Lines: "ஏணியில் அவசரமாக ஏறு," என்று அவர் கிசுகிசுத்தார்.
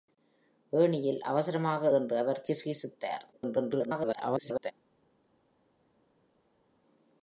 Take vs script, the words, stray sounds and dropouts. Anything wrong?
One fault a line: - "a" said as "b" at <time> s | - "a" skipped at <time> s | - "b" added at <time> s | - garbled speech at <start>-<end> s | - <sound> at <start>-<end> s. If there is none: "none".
- "ஏறு" skipped at 1.9 s
- garbled speech at 3.3-4.7 s